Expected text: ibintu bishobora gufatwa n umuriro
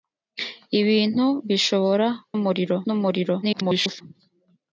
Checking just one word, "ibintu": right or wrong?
right